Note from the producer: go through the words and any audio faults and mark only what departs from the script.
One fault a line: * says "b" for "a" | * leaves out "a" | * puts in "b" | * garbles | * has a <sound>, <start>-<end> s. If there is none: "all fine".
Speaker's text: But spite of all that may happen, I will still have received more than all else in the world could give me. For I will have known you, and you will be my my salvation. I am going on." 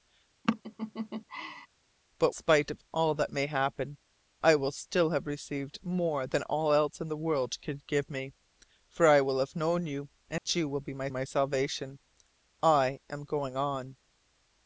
* has a laugh, 0.4-1.7 s
* has a dropout, 10.4-10.5 s